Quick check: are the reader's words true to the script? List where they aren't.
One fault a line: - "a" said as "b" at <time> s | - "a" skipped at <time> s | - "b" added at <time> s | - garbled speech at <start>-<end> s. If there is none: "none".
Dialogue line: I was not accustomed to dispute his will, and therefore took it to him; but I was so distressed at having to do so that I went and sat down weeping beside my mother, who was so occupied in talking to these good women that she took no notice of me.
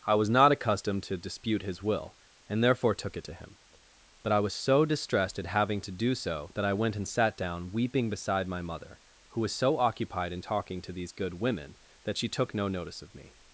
none